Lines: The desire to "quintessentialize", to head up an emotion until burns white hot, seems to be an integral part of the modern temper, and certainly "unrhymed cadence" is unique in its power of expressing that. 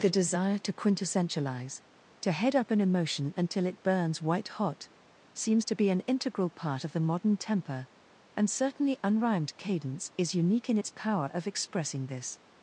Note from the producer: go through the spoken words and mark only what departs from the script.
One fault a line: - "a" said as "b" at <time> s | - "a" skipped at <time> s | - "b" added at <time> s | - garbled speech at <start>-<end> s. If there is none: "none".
- "it" added at 3.7 s
- "that" said as "this" at 12.1 s